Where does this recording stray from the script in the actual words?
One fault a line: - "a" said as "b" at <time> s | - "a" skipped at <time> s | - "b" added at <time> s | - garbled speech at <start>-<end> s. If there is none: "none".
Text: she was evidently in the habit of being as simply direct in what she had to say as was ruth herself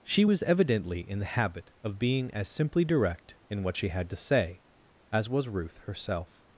none